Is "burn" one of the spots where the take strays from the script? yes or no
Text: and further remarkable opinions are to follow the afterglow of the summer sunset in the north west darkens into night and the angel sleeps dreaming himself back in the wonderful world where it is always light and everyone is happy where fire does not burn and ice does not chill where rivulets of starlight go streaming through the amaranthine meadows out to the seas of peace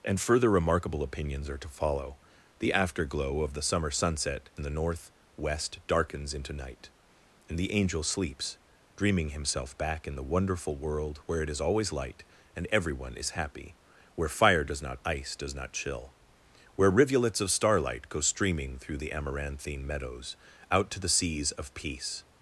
yes